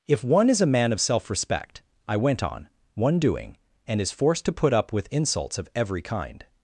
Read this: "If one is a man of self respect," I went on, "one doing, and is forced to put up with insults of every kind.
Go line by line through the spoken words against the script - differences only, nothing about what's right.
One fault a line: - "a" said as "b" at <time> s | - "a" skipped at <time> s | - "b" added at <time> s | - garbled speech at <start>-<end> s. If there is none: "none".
none